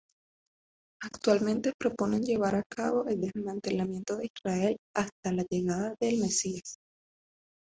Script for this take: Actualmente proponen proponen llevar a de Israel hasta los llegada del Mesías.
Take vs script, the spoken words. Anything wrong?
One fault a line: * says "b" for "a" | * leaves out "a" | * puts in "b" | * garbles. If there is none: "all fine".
* leaves out "proponen"
* puts in "cabo el desmantelamiento"
* says "la" for "los"